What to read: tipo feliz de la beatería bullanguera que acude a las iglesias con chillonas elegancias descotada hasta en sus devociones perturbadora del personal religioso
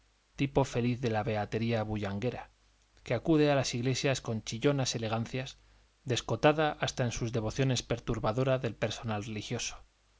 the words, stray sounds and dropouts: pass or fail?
pass